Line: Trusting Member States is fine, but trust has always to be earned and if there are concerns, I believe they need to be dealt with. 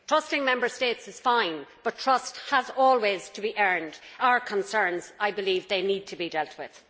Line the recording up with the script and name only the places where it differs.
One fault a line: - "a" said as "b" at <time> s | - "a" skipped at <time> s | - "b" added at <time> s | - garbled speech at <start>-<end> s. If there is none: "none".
- "and if there" skipped at 4.0 s